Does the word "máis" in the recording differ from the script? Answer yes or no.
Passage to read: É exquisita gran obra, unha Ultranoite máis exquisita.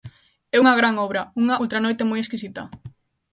yes